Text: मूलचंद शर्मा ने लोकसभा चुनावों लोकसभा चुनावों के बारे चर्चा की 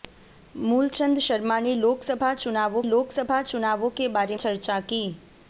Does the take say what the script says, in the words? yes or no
yes